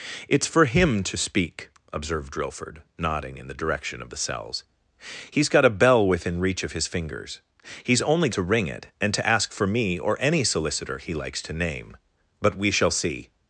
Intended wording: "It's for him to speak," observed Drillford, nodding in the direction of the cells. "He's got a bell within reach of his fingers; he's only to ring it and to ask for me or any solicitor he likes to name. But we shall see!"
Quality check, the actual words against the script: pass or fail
pass